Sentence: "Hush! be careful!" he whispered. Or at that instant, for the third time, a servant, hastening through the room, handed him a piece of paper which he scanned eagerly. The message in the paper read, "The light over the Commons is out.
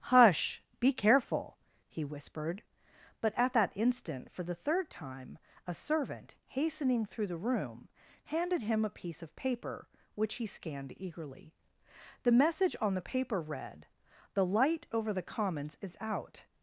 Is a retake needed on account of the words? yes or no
yes